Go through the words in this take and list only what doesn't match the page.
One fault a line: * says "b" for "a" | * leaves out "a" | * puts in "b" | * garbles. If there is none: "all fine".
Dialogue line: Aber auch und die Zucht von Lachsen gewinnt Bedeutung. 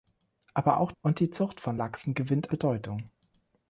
all fine